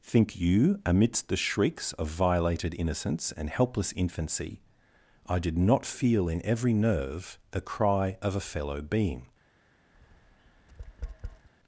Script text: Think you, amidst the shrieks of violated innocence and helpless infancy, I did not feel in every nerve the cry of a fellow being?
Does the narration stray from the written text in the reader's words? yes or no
no